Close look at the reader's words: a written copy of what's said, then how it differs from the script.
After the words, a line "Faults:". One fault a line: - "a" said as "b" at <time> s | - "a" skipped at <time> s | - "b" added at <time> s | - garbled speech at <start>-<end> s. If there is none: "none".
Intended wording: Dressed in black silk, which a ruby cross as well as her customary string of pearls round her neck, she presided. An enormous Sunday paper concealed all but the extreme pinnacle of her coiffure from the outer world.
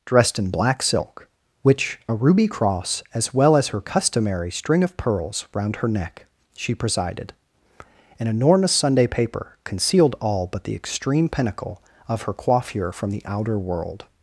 Dressed in black silk, which a ruby cross as well as her customary string of pearls round her neck, she presided. An enormous Sunday paper concealed all but the extreme pinnacle of her coiffure from the outer world.
Faults:
none